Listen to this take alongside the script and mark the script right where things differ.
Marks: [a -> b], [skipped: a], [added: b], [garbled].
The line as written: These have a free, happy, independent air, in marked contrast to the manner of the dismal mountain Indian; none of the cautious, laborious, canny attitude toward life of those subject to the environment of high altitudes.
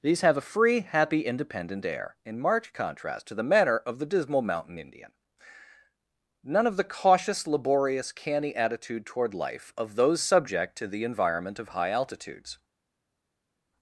These have a free, happy, independent air, in marked contrast to the manner of the dismal mountain Indian; none of the cautious, laborious, canny attitude toward life of those subject to the environment of high altitudes.